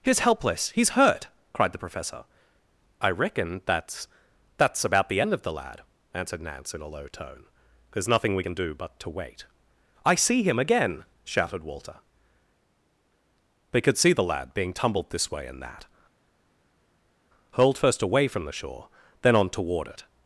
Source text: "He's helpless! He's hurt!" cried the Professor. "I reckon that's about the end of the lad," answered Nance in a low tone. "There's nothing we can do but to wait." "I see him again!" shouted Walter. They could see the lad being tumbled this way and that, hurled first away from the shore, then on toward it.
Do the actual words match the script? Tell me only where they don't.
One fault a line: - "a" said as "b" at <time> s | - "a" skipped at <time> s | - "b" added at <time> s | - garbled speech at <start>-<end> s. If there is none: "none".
- "that's" added at 4.6 s